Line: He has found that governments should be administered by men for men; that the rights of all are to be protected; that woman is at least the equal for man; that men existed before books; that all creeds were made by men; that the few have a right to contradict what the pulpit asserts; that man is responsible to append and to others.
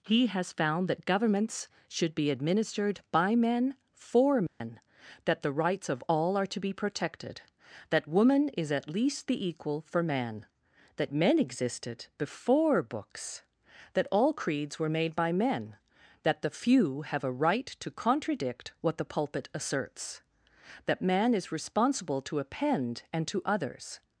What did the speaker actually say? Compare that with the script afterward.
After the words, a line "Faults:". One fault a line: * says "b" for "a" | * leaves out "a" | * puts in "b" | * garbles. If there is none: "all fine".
He has found that governments should be administered by men for men; that the rights of all are to be protected; that woman is at least the equal for man; that men existed before books; that all creeds were made by men; that the few have a right to contradict what the pulpit asserts; that man is responsible to append and to others.
Faults:
all fine